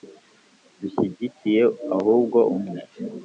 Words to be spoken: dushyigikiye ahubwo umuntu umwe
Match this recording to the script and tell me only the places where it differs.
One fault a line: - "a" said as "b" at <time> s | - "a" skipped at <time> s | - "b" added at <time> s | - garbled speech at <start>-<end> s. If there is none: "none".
- "umuntu" skipped at 2.4 s